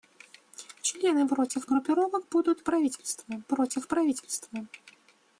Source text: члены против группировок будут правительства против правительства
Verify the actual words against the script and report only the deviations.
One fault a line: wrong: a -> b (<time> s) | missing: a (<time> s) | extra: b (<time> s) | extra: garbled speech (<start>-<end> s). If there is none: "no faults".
no faults